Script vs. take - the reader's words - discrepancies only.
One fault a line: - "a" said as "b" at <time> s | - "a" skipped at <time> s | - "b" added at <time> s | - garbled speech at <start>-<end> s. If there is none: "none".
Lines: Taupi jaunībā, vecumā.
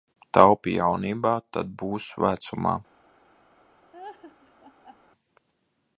- "tad būs" added at 1.6 s